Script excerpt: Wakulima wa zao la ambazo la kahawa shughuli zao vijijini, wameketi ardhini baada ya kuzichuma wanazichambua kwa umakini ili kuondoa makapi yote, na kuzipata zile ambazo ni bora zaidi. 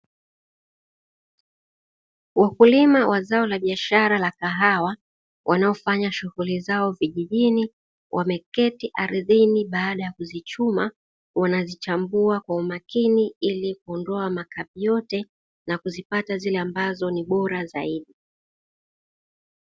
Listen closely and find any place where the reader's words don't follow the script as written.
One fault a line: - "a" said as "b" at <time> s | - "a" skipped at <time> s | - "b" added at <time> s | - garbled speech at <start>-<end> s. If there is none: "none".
- "ambazo" said as "biashara" at 3.6 s
- "wanaofanya" added at 5.5 s